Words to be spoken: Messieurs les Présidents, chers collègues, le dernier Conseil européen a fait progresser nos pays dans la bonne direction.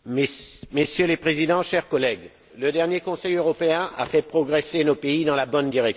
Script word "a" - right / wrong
right